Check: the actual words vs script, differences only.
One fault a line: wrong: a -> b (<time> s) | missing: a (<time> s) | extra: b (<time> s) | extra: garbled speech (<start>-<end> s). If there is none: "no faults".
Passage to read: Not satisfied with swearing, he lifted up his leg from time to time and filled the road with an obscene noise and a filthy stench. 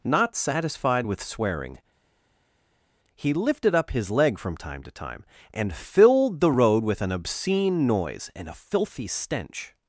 no faults